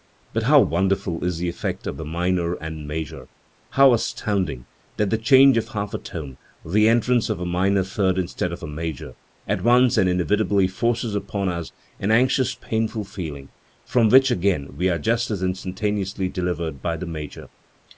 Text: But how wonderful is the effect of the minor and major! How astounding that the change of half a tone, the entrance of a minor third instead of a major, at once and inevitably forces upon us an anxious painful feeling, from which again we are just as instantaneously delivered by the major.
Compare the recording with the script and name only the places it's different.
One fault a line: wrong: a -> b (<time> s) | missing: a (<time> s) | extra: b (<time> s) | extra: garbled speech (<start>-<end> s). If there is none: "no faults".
no faults